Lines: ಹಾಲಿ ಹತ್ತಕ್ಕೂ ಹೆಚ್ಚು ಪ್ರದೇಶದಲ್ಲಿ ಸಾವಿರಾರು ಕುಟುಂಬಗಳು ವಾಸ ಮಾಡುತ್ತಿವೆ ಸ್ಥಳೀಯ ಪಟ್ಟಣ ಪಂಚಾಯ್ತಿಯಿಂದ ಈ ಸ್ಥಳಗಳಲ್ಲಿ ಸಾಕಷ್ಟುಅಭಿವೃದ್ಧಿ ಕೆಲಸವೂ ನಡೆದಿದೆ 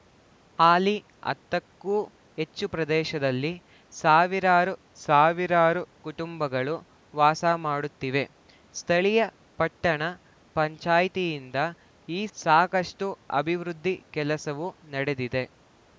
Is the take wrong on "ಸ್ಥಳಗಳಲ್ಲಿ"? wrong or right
wrong